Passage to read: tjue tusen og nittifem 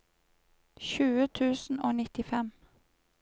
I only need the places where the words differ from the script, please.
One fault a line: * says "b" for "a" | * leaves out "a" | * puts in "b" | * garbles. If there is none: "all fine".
all fine